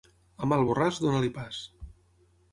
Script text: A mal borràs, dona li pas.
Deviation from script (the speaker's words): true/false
false